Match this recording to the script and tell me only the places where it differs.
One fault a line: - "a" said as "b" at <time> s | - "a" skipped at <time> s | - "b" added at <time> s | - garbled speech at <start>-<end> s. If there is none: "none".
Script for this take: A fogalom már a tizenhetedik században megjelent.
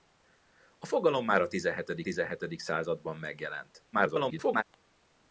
- "tizenhetedik" added at 2.0 s
- garbled speech at 3.9-4.6 s